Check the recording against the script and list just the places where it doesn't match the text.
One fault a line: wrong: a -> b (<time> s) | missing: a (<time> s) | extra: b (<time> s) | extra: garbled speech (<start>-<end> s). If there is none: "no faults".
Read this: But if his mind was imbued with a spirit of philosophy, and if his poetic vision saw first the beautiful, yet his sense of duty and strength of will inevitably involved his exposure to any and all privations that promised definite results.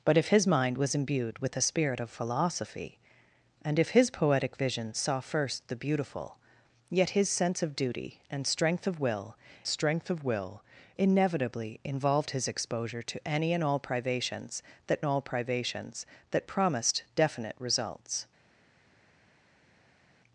extra: strength of will (9.7 s)
extra: all privations that (15.0 s)